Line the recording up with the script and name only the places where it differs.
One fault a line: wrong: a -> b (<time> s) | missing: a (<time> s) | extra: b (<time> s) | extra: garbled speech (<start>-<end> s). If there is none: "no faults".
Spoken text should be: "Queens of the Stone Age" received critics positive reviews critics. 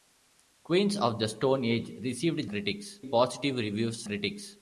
no faults